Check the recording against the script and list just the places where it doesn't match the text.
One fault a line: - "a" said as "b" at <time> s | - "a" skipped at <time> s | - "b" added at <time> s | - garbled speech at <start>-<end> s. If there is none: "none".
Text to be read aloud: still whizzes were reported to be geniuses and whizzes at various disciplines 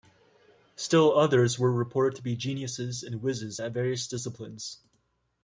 - "whizzes" said as "others" at 1.1 s